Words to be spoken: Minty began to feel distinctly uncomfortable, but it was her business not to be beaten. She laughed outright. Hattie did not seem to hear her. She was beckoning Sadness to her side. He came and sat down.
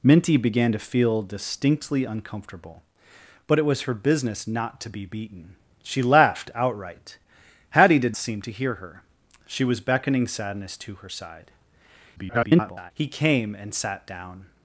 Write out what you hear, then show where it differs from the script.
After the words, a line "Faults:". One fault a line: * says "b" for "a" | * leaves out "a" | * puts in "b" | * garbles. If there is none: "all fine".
Minty began to feel distinctly uncomfortable, but it was her business not to be beaten. She laughed outright. Hattie did seem to hear her. She was beckoning Sadness to her side. [garbled] He came and sat down.
Faults:
* leaves out "not"
* garbles